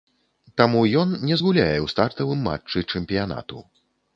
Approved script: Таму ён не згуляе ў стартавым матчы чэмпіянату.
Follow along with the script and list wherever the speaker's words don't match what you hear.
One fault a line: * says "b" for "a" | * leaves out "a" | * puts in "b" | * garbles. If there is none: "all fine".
all fine